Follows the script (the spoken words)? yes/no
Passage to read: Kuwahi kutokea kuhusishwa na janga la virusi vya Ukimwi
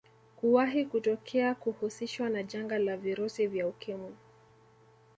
yes